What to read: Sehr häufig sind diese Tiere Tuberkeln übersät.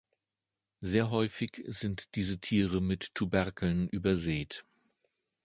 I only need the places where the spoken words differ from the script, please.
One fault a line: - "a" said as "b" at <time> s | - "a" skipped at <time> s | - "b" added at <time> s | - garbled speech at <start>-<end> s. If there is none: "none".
- "mit" added at 2.8 s